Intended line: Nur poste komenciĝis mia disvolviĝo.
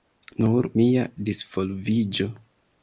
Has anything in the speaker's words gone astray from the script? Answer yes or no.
yes